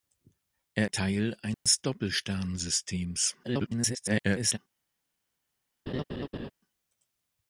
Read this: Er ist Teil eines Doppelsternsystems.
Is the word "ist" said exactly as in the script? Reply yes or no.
no